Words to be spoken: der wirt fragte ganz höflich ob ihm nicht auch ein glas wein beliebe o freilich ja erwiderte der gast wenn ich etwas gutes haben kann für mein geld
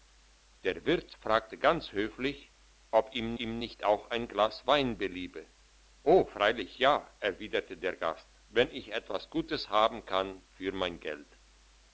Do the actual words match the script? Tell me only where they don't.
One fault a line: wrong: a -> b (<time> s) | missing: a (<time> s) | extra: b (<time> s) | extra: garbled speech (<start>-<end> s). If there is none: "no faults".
extra: ihm (3.4 s)